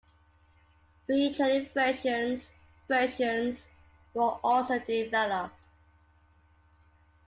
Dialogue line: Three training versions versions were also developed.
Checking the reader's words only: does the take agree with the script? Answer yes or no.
yes